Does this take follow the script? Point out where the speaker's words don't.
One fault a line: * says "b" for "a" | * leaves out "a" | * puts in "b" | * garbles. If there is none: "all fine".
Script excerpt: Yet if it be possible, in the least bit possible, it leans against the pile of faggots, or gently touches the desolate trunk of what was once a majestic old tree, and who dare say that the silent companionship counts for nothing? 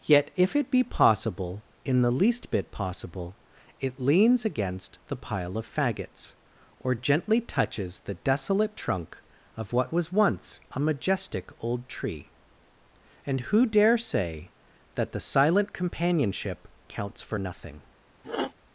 all fine